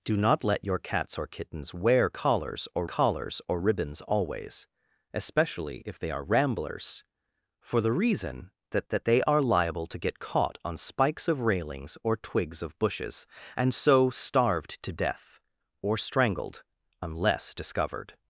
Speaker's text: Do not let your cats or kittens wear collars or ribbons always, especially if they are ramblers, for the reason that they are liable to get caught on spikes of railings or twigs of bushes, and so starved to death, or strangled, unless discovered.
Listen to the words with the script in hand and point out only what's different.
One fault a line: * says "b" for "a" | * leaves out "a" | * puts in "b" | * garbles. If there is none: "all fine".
* puts in "collars or"
* puts in "that"